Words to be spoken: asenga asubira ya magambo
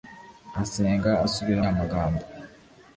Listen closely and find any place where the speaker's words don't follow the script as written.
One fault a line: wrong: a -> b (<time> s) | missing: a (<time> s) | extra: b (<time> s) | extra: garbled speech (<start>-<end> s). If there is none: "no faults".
no faults